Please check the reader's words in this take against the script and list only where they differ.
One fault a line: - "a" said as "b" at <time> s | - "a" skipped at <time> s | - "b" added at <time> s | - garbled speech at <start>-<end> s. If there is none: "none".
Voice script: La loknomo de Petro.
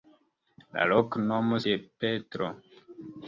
none